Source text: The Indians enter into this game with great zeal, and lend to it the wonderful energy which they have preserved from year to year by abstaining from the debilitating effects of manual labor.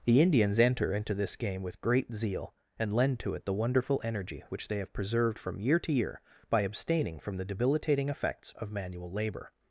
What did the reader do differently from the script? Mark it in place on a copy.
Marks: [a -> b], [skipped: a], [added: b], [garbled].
The Indians enter into this game with great zeal, and lend to it the wonderful energy which they have preserved from year to year by abstaining from the debilitating effects of manual labor.